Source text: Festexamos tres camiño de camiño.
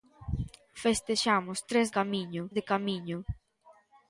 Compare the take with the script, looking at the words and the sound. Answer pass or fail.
pass